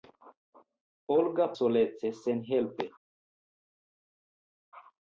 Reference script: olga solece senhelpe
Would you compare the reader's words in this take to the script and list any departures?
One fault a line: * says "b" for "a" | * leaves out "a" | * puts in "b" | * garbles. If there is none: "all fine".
all fine